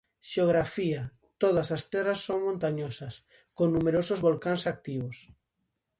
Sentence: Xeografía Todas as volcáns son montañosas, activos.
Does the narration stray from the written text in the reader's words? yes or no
yes